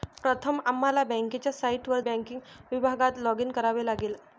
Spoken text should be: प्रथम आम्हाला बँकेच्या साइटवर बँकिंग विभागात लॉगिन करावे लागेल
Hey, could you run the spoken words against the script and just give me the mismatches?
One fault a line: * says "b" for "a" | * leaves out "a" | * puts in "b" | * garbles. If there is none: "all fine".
all fine